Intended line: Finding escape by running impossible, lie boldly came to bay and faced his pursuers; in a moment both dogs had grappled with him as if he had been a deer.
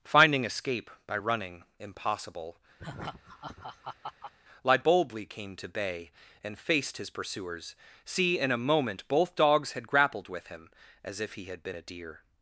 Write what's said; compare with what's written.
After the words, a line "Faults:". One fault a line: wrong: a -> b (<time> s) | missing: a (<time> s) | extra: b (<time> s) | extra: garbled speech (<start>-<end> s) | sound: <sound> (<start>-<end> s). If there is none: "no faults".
Finding escape by running impossible, lie boldly came to bay and faced his pursuers; see in a moment both dogs had grappled with him as if he had been a deer.
Faults:
sound: laugh (2.8-4.3 s)
extra: see (8.0 s)